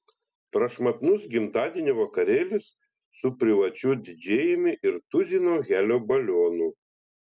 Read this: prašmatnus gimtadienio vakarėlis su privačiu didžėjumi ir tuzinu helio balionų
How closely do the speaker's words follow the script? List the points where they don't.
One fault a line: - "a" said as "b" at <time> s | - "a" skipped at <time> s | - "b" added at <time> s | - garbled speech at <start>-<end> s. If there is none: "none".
none